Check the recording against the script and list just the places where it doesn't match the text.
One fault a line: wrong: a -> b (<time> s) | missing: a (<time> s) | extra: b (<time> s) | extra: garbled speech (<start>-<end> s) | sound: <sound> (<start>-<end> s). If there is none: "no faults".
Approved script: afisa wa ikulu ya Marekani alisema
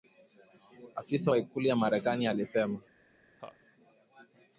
sound: laugh (3.4-3.6 s)